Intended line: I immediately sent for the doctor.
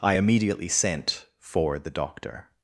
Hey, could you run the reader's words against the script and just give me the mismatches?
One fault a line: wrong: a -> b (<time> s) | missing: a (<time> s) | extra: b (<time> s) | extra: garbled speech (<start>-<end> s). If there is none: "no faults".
no faults